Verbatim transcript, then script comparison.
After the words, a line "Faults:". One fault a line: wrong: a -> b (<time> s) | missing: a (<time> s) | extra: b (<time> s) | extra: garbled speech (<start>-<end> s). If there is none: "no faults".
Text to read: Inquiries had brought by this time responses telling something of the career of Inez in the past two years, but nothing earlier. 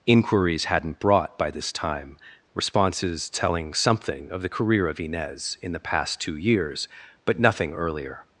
Inquiries hadn't brought by this time responses telling something of the career of Inez in the past two years, but nothing earlier.
Faults:
wrong: had -> hadn't (0.7 s)